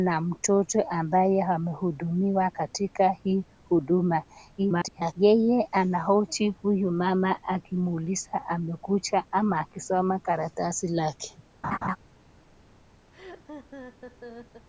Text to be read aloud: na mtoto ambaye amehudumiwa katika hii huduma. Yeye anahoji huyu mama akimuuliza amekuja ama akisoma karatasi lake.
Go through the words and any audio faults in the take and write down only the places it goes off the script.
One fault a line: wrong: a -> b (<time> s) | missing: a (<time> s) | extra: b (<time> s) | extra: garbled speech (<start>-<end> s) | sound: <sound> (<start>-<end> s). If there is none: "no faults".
extra: garbled speech (4.6-5.1 s)
sound: laugh (11.6-12.0 s)
sound: laugh (13.1-14.7 s)